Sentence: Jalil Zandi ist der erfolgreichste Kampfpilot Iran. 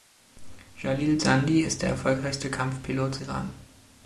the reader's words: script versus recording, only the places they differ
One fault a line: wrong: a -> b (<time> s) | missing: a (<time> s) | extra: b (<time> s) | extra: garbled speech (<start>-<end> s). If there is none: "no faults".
no faults